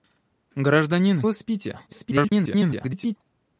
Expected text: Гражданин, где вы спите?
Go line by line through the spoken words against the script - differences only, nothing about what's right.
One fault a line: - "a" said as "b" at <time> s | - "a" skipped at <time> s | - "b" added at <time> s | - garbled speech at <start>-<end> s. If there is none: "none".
- "где" skipped at 1.2 s
- garbled speech at 1.9-3.2 s